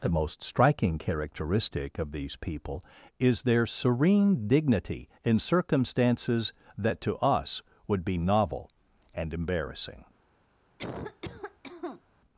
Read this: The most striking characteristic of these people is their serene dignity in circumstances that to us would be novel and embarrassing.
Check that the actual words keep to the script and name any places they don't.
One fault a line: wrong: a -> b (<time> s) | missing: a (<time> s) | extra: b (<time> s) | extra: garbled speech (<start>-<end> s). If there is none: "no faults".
no faults